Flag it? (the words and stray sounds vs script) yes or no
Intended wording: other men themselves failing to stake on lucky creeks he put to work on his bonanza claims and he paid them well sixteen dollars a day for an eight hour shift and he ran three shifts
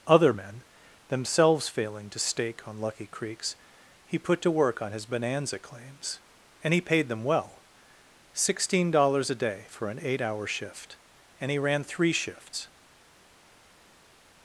no